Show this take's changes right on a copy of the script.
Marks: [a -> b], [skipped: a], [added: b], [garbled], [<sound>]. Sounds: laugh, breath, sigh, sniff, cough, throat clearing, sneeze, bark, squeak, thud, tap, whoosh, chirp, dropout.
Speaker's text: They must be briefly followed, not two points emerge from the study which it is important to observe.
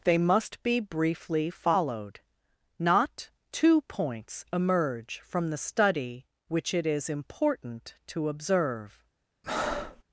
They must be briefly followed, not two points emerge from the study which it is important to observe. [breath]